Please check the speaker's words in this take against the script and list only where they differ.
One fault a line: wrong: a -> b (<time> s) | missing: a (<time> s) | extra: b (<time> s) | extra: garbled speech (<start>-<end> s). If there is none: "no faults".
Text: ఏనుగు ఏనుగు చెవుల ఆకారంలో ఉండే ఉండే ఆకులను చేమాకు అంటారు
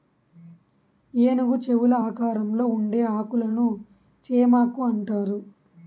missing: ఏనుగు (1.6 s)
missing: ఉండే (3.0 s)